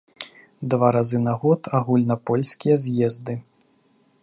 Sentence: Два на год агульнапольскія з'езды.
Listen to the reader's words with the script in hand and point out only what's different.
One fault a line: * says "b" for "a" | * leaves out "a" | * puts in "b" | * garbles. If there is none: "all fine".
* puts in "разы"